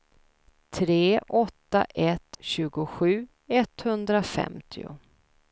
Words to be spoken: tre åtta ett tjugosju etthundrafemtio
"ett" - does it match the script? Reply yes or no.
yes